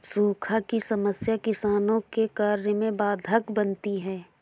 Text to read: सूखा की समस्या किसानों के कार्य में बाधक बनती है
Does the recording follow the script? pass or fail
pass